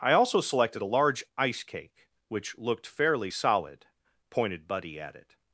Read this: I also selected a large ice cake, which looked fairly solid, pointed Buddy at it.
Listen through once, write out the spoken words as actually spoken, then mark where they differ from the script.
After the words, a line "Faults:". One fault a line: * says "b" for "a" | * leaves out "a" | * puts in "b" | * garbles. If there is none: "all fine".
I also selected a large ice cake, which looked fairly solid, pointed Buddy at it.
Faults:
all fine